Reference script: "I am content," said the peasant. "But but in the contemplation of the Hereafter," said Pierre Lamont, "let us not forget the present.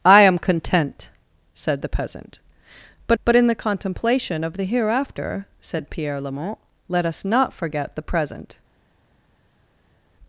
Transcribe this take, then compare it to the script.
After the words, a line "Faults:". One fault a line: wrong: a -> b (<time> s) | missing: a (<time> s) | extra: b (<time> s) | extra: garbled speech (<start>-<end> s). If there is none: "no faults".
"I am content," said the peasant. "But but in the contemplation of the Hereafter," said Pierre Lamont, "let us not forget the present.
Faults:
no faults